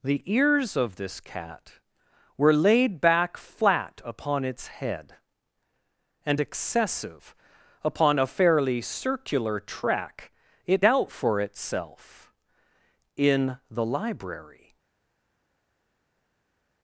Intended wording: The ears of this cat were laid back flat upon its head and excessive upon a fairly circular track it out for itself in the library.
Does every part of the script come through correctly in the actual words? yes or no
yes